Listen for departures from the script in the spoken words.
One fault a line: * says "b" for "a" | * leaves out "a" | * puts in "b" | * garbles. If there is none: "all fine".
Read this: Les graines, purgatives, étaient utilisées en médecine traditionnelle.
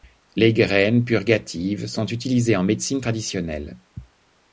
* says "sont" for "étaient"